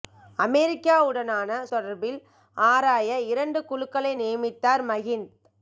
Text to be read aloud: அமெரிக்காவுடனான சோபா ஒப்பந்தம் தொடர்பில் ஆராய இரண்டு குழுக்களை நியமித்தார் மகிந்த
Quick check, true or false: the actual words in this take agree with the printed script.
false